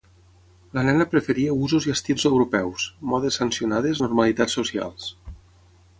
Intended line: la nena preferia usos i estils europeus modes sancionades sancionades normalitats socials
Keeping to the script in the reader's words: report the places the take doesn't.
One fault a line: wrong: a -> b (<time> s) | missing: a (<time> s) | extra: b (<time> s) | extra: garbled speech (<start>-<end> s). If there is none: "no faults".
missing: sancionades (4.0 s)